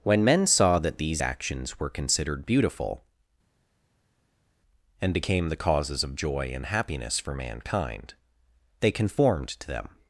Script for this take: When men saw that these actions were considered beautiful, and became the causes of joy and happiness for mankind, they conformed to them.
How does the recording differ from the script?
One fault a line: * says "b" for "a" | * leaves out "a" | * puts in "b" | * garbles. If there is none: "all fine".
all fine